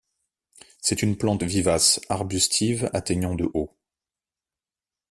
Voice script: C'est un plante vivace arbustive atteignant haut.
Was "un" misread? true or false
true